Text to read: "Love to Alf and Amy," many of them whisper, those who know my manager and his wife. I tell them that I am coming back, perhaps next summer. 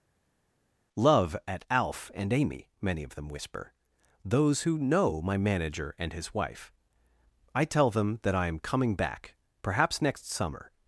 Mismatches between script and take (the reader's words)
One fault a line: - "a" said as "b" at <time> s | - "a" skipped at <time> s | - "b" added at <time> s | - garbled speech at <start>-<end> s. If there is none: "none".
- "to" said as "at" at 1.5 s